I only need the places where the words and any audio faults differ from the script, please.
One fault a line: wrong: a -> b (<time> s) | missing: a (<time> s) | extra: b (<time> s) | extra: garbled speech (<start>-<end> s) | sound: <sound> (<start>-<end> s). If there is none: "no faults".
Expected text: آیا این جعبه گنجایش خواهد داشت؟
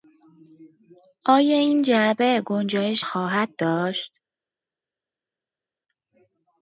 no faults